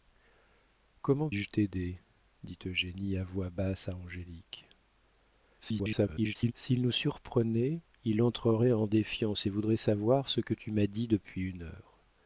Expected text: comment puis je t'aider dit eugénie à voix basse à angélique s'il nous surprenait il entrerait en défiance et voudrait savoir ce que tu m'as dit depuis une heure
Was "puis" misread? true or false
true